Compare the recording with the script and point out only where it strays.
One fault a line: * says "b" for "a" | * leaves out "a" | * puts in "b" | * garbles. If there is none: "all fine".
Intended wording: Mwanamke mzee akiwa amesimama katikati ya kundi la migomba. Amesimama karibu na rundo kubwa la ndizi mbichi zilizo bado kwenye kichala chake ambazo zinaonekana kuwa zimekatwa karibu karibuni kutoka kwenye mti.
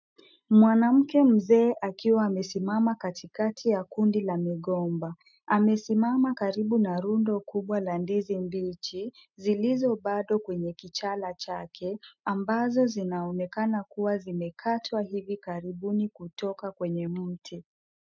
* says "hivi" for "karibu"